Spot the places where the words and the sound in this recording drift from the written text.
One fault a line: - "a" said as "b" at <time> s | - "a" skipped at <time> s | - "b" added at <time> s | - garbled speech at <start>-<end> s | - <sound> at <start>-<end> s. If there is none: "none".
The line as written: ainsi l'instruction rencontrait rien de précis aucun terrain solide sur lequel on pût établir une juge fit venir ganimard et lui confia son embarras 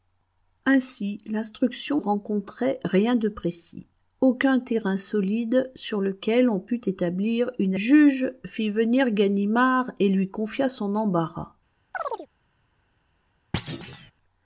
- chirp at 11.9-12.3 s
- thud at 13.5-14.1 s